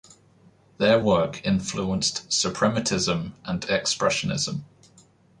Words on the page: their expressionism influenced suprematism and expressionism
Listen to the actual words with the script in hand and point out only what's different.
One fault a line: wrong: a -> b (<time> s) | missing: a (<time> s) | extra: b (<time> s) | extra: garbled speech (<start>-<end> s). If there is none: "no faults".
wrong: expressionism -> work (1.0 s)